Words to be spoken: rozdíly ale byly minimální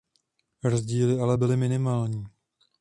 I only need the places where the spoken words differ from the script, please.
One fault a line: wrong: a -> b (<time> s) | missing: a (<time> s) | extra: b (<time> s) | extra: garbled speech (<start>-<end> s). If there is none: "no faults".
no faults